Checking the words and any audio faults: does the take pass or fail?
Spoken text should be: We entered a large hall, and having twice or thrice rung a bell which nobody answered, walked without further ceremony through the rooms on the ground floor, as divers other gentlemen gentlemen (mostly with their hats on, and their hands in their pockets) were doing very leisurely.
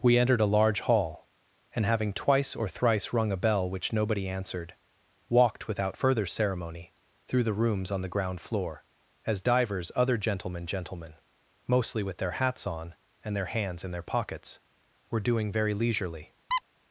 fail